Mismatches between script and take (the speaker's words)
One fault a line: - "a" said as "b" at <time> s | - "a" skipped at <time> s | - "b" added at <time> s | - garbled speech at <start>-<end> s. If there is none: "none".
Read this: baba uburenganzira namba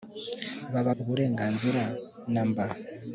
none